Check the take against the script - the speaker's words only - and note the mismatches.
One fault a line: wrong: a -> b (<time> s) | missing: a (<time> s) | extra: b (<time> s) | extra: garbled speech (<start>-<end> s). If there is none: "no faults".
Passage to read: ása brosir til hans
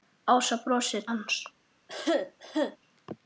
missing: til (1.0 s)